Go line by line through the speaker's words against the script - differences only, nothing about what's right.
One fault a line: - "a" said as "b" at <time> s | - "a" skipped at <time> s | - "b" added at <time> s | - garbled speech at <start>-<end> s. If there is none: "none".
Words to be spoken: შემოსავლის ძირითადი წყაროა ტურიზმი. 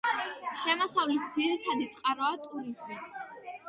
none